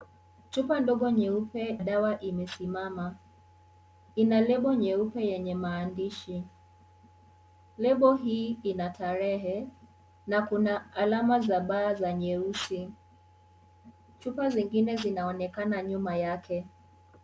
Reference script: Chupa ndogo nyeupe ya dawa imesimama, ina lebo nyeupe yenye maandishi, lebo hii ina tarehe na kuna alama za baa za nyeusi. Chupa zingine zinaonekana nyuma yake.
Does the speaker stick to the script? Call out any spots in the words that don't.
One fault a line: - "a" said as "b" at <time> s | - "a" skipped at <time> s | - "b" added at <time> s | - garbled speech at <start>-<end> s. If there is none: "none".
- "ya" skipped at 1.6 s